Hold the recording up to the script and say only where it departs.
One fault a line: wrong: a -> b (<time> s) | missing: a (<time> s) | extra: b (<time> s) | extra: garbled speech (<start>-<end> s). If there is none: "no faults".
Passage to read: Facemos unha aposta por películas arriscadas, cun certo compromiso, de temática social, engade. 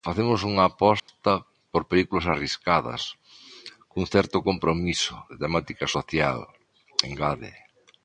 no faults